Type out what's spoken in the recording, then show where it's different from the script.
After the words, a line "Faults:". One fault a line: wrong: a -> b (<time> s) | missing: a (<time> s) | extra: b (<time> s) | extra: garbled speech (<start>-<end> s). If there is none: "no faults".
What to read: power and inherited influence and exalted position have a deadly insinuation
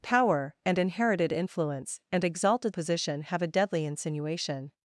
power and inherited influence and exalted position have a deadly insinuation
Faults:
no faults